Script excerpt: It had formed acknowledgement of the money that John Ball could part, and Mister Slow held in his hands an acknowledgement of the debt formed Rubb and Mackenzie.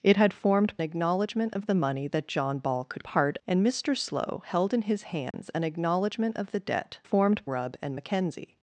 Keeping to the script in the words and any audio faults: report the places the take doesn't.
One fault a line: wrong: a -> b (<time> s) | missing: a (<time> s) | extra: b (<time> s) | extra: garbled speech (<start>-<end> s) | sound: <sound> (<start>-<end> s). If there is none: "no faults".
sound: dropout (5.3-5.3 s)